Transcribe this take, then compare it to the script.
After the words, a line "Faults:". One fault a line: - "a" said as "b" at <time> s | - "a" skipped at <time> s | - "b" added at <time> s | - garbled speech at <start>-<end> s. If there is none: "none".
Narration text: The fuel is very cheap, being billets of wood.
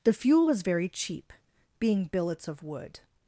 The fuel was very cheap, being billets of wood.
Faults:
- "is" said as "was" at 0.4 s